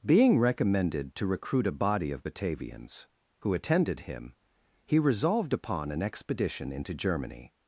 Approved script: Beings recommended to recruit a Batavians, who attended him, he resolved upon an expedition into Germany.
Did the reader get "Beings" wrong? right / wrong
wrong